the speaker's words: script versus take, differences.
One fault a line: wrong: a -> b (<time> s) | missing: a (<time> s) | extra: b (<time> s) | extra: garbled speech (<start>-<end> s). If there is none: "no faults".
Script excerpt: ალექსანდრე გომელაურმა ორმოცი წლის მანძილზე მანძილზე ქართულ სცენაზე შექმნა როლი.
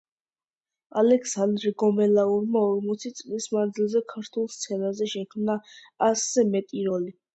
missing: მანძილზე (4.0 s)
extra: ასზე მეტი (6.1 s)